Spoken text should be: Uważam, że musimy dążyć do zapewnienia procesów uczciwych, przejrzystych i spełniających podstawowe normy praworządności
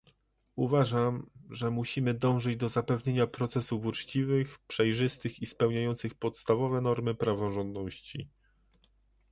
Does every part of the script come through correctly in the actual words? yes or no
yes